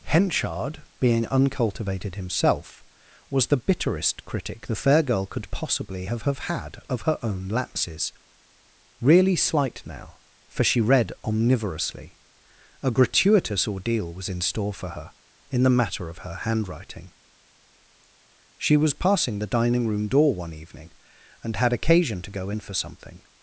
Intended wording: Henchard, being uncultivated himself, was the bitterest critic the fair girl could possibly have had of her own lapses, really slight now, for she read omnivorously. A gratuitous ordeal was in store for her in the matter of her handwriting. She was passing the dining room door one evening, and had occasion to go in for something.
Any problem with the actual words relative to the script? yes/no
yes